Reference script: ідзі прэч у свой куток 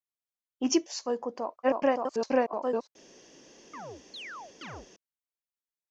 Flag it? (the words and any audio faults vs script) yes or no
yes